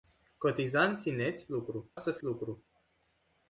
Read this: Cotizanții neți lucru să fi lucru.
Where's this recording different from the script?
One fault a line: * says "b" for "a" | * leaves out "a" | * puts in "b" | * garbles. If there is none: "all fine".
all fine